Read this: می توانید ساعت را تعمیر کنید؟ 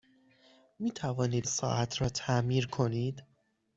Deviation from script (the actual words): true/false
false